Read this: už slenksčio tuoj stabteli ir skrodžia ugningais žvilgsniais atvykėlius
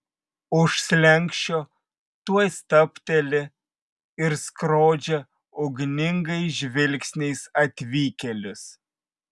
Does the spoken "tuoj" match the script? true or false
true